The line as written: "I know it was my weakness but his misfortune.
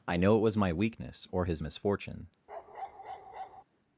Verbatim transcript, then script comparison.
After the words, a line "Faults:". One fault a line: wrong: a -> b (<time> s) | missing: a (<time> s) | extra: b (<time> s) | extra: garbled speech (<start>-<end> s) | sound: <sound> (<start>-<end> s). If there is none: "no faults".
"I know it was my weakness or his misfortune.
Faults:
wrong: but -> or (1.3 s)
sound: bark (2.5-3.6 s)